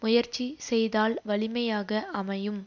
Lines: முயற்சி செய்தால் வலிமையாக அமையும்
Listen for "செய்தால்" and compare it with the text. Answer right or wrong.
right